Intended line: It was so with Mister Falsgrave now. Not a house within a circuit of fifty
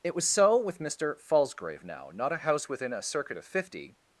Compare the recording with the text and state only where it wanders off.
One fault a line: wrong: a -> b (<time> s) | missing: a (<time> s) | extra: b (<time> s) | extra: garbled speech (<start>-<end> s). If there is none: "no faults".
no faults